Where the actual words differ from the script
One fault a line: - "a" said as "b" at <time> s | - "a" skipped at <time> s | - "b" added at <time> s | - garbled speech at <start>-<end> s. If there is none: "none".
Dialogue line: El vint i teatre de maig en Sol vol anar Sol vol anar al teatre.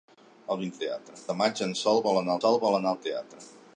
none